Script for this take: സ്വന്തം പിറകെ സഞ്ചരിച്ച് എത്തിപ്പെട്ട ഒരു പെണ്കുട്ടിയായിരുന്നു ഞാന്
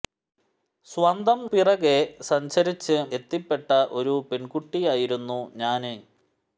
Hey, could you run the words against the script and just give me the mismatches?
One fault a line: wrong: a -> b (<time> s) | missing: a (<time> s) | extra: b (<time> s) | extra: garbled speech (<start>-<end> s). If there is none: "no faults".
no faults